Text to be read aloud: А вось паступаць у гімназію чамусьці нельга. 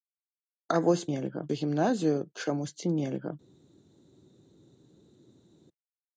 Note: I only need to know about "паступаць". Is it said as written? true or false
false